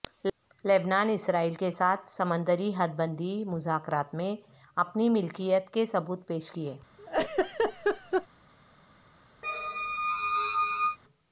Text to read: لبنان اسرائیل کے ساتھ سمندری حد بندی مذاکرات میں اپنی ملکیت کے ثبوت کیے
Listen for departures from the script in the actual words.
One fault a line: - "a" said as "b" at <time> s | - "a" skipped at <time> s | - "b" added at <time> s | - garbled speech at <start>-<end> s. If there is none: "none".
- "پیش" added at 6.3 s